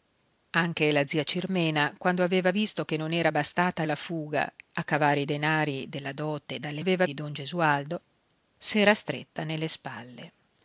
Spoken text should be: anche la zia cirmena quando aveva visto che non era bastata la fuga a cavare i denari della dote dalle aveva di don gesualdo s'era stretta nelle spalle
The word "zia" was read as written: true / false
true